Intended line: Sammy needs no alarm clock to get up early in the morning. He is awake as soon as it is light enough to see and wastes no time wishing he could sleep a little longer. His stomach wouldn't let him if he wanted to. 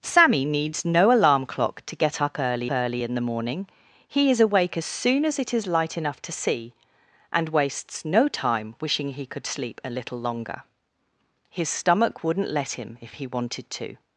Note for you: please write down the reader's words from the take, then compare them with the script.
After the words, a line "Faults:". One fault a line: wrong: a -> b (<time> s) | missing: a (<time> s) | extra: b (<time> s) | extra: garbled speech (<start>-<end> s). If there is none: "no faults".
Sammy needs no alarm clock to get up early early in the morning. He is awake as soon as it is light enough to see and wastes no time wishing he could sleep a little longer. His stomach wouldn't let him if he wanted to.
Faults:
extra: early (2.7 s)